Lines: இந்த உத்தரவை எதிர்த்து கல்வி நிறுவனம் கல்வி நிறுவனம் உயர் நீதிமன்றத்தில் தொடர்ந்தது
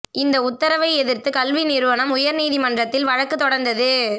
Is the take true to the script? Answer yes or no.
no